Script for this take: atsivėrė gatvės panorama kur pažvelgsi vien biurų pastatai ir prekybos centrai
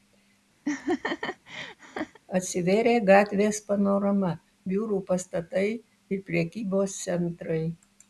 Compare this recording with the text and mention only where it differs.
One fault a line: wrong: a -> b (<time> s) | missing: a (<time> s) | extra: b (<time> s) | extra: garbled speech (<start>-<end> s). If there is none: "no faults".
missing: kur pažvelgsi vien (4.3 s)